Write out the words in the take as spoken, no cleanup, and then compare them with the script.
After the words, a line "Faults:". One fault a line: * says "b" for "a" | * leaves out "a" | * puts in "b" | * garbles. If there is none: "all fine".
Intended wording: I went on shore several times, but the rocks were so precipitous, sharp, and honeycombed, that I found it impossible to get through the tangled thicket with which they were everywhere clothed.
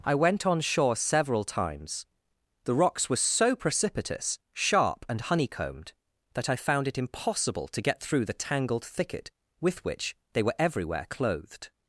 I went on shore several times, the rocks were so precipitous, sharp, and honeycombed, that I found it impossible to get through the tangled thicket with which they were everywhere clothed.
Faults:
* leaves out "but"